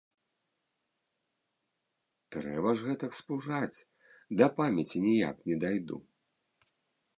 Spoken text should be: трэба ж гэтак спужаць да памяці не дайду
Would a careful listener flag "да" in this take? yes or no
no